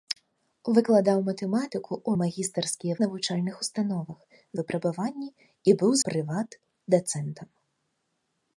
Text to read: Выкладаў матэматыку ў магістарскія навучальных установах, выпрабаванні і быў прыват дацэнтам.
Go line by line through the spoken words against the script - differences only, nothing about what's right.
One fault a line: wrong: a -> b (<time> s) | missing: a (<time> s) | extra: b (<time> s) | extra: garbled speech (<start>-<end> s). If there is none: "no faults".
no faults